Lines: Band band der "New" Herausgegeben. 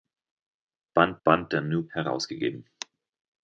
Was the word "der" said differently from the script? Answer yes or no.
no